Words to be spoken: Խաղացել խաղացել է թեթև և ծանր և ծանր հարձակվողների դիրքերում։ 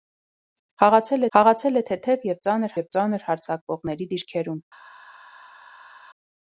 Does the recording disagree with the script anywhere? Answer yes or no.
no